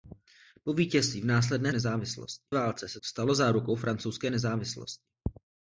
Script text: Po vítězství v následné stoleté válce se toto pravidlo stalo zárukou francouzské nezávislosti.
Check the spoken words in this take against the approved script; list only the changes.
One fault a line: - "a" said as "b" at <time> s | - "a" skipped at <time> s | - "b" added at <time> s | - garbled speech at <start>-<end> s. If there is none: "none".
- "stoleté" said as "nezávislosti" at 1.7 s
- "toto pravidlo" skipped at 3.0 s